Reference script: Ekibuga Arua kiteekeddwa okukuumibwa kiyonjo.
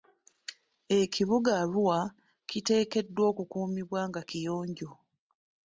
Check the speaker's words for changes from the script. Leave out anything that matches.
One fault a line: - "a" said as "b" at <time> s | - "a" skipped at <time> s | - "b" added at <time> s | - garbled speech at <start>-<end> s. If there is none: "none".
- "nga" added at 4.1 s